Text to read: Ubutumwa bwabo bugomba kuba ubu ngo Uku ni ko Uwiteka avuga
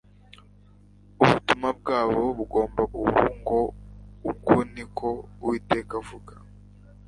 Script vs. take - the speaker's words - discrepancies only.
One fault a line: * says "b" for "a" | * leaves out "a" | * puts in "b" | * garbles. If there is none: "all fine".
* leaves out "kuba"